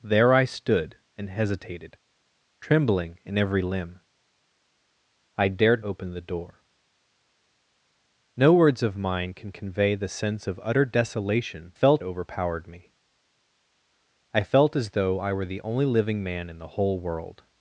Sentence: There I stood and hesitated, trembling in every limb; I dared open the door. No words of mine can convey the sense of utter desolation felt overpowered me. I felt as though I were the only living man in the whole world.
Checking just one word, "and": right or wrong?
right